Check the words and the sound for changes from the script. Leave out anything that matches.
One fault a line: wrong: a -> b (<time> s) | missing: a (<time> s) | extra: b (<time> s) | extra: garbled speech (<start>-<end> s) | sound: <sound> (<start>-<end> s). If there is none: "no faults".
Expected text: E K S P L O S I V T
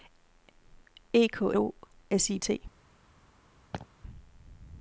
missing: S P L (1.5 s)
missing: V (2.4 s)
sound: laugh (3.7-3.9 s)